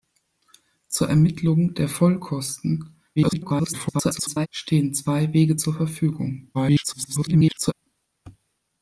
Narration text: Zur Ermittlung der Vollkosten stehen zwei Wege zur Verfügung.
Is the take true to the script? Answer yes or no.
no